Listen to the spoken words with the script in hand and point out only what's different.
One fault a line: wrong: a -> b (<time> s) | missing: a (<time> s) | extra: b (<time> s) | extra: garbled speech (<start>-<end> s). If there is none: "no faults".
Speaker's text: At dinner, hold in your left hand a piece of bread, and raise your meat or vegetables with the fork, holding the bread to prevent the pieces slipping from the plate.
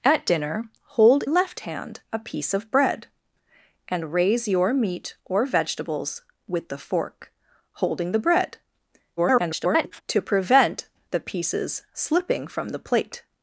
missing: in your (1.2 s)
extra: garbled speech (9.2-10.0 s)